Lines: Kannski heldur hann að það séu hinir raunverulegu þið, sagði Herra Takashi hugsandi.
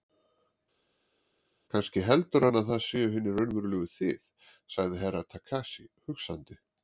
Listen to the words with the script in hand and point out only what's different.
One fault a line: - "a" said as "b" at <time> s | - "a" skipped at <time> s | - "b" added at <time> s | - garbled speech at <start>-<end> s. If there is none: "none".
none